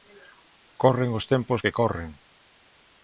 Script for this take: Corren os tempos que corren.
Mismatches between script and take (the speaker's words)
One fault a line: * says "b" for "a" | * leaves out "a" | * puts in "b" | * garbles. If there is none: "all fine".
all fine